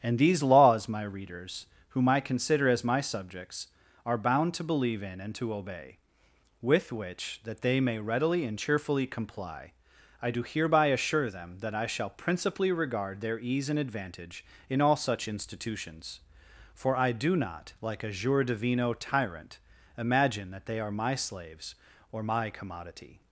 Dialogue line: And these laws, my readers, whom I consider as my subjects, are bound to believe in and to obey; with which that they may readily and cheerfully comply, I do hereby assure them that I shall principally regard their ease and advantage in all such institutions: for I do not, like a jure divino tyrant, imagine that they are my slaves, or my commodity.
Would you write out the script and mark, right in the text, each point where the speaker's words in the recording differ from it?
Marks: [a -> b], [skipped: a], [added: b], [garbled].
And these laws, my readers, whom I consider as my subjects, are bound to believe in and to obey; with which that they may readily and cheerfully comply, I do hereby assure them that I shall principally regard their ease and advantage in all such institutions: for I do not, like a jure divino tyrant, imagine that they are my slaves, or my commodity.